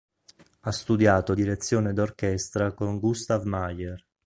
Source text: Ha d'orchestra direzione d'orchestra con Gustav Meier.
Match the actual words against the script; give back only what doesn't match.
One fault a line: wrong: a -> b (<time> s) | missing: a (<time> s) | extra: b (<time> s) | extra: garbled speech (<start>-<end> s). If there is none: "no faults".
wrong: d'orchestra -> studiato (0.7 s)